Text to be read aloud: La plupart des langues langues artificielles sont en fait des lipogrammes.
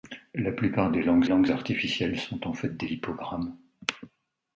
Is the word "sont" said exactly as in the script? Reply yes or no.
yes